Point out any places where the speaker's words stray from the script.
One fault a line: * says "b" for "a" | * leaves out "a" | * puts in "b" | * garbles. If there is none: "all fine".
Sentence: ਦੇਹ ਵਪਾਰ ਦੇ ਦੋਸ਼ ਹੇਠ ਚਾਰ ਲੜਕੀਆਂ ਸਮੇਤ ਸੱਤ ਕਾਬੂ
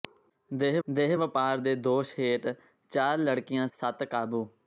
* puts in "ਦੇਹ"
* leaves out "ਸਮੇਤ"